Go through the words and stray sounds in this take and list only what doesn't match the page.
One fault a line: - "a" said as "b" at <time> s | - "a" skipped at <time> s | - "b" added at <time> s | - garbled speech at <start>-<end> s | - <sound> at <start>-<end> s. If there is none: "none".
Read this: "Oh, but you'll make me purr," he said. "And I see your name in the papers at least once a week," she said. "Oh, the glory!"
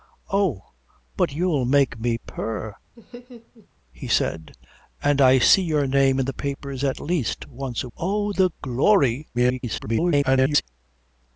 - laugh at 3.0-3.7 s
- "week she said" skipped at 7.9 s
- garbled speech at 9.3-10.6 s